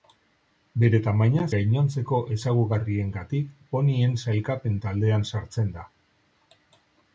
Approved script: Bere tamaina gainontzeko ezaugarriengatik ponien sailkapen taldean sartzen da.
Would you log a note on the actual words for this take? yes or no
no